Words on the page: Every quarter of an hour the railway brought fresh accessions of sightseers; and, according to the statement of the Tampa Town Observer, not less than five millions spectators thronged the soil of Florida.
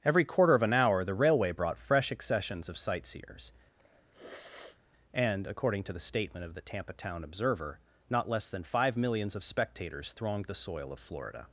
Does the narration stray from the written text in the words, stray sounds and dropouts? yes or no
yes